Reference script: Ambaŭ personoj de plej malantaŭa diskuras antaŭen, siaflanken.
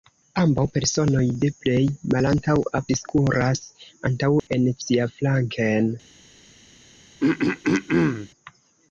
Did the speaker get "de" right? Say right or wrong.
right